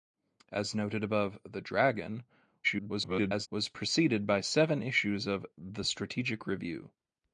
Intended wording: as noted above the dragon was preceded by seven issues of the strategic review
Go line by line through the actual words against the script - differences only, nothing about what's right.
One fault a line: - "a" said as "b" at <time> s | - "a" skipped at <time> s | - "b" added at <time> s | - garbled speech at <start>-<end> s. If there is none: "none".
- garbled speech at 2.6-3.5 s